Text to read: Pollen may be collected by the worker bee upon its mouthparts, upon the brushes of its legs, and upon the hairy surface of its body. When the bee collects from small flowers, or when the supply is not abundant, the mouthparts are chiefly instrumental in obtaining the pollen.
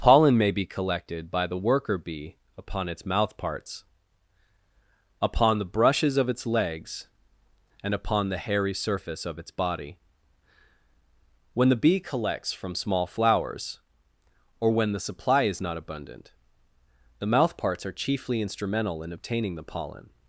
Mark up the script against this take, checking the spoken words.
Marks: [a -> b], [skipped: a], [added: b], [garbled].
Pollen may be collected by the worker bee upon its mouthparts, upon the brushes of its legs, and upon the hairy surface of its body. When the bee collects from small flowers, or when the supply is not abundant, the mouthparts are chiefly instrumental in obtaining the pollen.